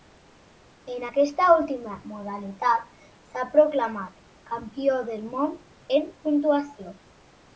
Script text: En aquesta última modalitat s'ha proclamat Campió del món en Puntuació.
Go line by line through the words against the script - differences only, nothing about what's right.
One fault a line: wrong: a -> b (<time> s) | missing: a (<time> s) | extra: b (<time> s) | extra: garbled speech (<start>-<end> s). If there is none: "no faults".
no faults